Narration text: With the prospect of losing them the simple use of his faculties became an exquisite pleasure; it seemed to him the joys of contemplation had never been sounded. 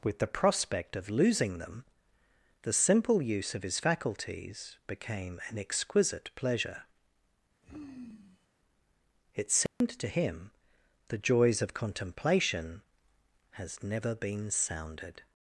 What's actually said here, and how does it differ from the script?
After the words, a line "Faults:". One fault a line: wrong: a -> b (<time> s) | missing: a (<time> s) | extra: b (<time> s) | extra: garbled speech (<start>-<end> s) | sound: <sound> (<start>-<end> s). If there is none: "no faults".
With the prospect of losing them the simple use of his faculties became an exquisite pleasure; it seemed to him the joys of contemplation has never been sounded.
Faults:
sound: sigh (7.6-8.5 s)
sound: dropout (9.7-9.8 s)
wrong: had -> has (13.5 s)